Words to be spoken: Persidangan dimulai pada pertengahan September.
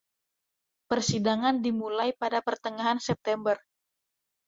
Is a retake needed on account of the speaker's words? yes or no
no